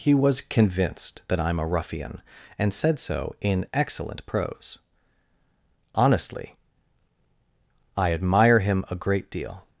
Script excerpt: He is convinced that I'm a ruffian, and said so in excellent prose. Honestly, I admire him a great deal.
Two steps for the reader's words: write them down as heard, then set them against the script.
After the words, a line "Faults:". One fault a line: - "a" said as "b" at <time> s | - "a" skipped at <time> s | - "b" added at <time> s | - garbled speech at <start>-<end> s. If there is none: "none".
He was convinced that I'm a ruffian, and said so in excellent prose. Honestly, I admire him a great deal.
Faults:
- "is" said as "was" at 0.1 s